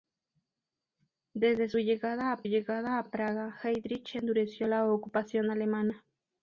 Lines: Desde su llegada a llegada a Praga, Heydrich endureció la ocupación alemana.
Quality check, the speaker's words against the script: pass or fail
pass